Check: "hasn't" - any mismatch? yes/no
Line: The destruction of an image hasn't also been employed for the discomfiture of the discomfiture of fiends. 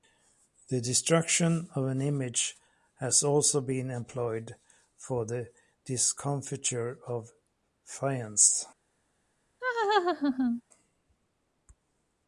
yes